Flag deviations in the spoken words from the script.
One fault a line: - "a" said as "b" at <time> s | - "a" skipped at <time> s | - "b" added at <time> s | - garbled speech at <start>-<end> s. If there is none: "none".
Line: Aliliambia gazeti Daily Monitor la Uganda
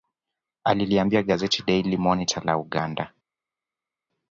none